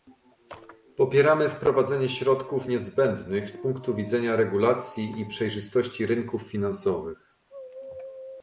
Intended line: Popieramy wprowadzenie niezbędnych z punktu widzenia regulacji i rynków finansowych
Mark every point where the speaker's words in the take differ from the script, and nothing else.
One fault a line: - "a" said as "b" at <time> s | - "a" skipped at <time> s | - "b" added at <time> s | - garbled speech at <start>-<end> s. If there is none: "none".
- "środków" added at 2.1 s
- "przejrzystości" added at 5.3 s